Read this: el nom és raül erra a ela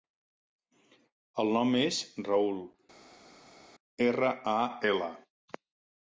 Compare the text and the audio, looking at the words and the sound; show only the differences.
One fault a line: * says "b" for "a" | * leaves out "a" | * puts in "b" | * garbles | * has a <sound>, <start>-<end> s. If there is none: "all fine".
all fine